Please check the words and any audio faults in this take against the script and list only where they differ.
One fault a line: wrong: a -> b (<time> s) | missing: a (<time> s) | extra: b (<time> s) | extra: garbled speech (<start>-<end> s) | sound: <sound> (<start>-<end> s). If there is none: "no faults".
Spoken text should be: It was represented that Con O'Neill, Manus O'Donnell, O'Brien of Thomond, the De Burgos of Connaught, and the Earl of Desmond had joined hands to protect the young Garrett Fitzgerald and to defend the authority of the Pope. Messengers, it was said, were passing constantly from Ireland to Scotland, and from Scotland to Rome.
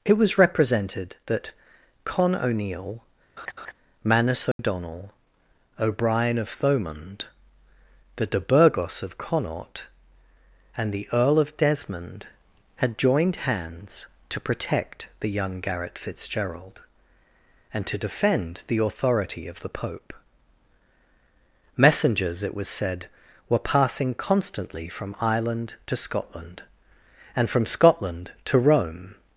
sound: laugh (3.4-3.7 s)
sound: dropout (4.5-4.6 s)